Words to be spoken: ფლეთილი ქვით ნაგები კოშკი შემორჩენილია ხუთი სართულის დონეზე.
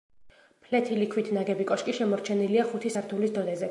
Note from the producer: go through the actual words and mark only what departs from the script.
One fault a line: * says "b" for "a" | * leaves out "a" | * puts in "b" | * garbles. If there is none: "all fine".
all fine